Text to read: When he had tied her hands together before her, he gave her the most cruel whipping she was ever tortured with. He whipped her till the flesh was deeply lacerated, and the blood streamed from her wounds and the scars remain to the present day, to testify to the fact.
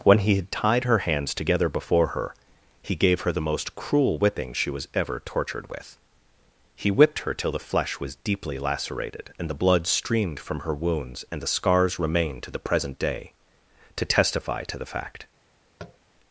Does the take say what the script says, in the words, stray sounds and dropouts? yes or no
no